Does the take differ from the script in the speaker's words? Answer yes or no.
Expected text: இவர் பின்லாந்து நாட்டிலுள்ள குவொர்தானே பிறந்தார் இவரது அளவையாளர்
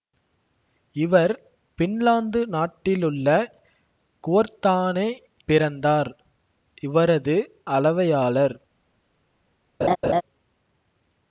no